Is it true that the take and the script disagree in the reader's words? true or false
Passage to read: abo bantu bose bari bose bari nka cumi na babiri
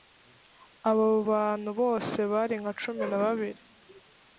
true